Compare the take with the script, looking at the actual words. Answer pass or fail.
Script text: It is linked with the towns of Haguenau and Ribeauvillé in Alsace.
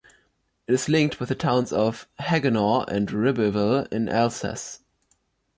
pass